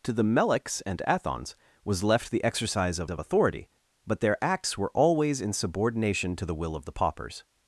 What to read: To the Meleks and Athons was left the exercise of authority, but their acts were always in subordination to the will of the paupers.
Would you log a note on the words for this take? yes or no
yes